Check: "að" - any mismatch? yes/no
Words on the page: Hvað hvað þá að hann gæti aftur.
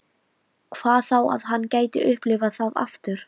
no